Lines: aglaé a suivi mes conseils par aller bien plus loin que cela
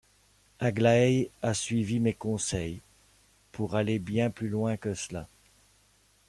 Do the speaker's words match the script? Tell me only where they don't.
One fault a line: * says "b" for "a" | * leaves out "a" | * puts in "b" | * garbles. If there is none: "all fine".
* says "pour" for "par"